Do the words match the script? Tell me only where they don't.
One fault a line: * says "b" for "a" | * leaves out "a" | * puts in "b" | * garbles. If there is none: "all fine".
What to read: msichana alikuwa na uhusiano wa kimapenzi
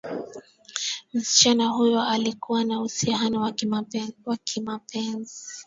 * puts in "huyo"